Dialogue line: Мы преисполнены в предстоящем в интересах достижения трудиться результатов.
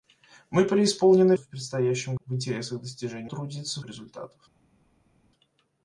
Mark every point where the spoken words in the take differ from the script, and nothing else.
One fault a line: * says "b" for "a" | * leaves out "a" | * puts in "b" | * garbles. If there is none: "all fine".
all fine